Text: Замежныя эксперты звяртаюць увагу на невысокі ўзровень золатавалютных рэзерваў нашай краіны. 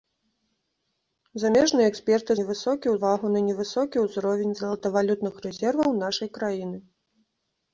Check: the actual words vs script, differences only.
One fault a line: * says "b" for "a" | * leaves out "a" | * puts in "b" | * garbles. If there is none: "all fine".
* says "невысокі" for "звяртаюць"